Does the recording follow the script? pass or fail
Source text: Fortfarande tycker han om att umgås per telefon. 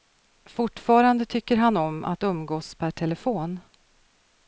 pass